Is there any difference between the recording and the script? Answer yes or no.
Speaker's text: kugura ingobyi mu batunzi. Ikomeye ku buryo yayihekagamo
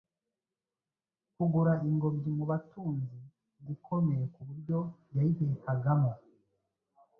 no